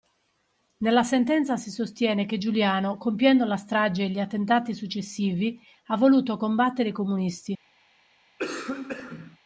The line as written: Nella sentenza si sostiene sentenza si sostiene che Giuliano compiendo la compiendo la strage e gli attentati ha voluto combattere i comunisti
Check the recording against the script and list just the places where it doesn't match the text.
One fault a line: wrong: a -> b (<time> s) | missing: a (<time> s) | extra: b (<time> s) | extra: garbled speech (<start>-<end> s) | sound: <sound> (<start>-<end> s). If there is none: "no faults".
missing: sentenza si sostiene (2.2 s)
missing: compiendo la (3.6 s)
extra: successivi (4.7 s)
sound: cough (8.4-9.4 s)